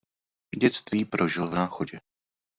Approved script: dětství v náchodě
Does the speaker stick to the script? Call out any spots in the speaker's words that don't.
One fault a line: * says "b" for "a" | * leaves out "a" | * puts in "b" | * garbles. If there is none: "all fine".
* puts in "prožil"